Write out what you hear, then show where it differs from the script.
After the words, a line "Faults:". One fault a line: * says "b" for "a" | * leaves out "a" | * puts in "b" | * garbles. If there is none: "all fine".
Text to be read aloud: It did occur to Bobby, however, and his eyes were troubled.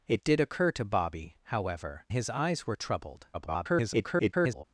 It did occur to Bobby, however, his eyes were troubled. [garbled]
Faults:
* leaves out "and"
* garbles